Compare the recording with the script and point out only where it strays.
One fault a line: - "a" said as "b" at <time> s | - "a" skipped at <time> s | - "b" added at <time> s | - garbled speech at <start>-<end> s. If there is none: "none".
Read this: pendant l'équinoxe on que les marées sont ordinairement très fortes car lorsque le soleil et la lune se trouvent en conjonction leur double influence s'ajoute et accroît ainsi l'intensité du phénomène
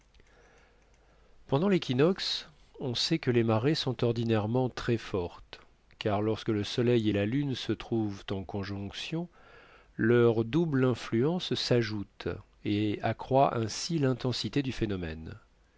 - "sait" added at 3.0 s